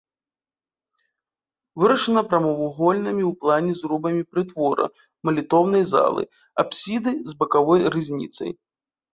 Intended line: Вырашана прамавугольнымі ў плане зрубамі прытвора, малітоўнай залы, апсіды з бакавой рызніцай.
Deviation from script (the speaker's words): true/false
false